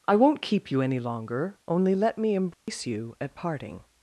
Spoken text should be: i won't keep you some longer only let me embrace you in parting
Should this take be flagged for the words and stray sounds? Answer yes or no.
yes